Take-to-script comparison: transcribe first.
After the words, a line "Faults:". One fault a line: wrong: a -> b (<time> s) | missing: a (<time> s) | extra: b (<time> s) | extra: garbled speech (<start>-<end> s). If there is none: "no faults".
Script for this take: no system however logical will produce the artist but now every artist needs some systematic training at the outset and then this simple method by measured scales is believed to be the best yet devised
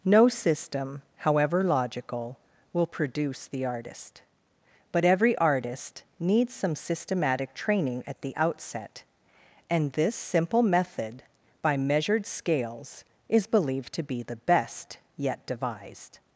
no system however logical will produce the artist but every artist needs some systematic training at the outset and this simple method by measured scales is believed to be the best yet devised
Faults:
missing: now (5.0 s)
missing: then (9.9 s)